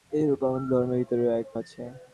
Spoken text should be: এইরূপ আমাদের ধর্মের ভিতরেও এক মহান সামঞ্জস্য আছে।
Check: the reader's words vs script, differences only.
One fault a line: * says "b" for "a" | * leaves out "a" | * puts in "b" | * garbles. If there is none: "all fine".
* leaves out "মহান সামঞ্জস্য"